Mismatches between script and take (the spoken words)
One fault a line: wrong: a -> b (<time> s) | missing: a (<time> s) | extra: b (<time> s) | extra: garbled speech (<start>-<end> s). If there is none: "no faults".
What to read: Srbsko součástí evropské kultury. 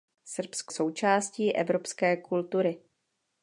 no faults